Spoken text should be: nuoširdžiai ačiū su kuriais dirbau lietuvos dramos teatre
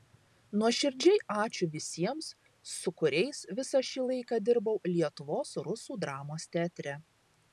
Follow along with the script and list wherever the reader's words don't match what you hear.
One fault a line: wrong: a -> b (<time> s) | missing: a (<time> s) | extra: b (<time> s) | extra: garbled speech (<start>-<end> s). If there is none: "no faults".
extra: visiems (1.8 s)
extra: visą šį laiką (3.6 s)
extra: rusų (5.7 s)